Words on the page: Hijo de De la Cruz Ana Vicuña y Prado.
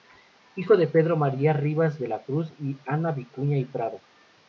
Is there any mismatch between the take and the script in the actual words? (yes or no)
yes